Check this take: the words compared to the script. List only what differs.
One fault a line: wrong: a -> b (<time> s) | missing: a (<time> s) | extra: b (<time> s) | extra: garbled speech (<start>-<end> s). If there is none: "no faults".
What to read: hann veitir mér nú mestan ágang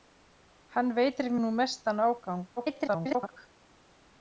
missing: mér (1.3 s)
extra: garbled speech (2.6-3.4 s)